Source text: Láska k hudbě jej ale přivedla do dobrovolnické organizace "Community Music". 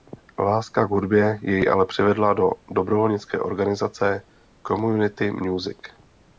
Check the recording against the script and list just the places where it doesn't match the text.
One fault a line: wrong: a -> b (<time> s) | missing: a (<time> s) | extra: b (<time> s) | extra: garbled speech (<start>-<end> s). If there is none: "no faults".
no faults